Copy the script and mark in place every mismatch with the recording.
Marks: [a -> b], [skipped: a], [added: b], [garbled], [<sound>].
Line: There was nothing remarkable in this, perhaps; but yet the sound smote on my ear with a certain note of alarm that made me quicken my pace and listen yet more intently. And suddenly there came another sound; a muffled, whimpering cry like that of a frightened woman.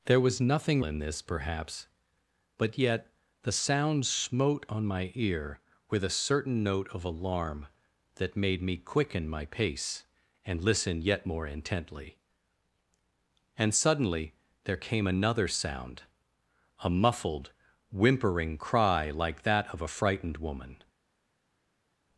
There was nothing [skipped: remarkable] in this, perhaps; but yet the sound smote on my ear with a certain note of alarm that made me quicken my pace and listen yet more intently. And suddenly there came another sound; a muffled, whimpering cry like that of a frightened woman.